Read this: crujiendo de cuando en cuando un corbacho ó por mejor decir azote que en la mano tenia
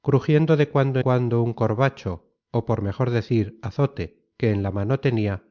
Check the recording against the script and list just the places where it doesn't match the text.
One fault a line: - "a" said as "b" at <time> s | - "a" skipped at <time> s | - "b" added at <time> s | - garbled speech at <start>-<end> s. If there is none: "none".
- "en" skipped at 1.0 s